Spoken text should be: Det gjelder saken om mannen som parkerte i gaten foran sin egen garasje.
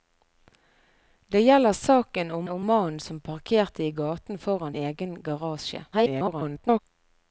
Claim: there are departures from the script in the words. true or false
true